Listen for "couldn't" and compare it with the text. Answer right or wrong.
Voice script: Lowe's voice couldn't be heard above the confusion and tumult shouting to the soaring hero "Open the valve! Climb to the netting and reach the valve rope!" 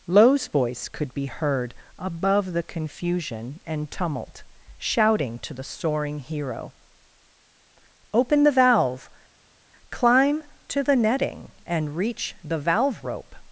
wrong